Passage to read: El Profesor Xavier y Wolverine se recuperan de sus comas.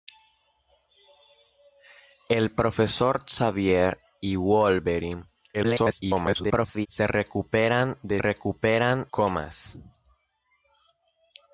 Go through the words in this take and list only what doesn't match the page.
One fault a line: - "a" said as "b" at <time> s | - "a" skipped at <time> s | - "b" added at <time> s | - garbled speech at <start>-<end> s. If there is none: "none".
- garbled speech at 5.5-6.9 s
- "sus" said as "recuperan" at 8.2 s